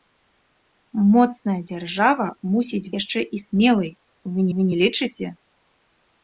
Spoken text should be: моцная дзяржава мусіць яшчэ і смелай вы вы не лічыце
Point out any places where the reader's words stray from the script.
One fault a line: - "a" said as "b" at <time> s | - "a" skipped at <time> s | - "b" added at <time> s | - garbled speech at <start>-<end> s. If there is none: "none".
none